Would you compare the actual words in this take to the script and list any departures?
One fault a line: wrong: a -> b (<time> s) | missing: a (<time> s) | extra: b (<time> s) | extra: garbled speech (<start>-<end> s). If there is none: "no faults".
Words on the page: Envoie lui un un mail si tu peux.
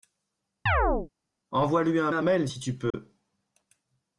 no faults